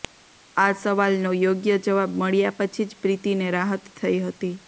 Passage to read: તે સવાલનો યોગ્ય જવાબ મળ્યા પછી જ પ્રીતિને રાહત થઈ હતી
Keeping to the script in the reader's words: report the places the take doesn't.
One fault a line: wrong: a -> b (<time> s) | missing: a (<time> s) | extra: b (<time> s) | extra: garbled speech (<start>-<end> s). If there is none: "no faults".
wrong: તે -> આ (0.6 s)